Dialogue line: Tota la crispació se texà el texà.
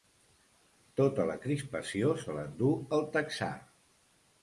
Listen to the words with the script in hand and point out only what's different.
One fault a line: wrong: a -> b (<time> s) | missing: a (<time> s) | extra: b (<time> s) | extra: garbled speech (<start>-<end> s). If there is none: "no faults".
wrong: texà -> l'endú (2.4 s)